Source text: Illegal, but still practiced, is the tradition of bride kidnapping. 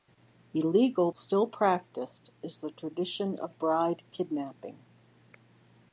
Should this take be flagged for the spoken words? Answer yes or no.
yes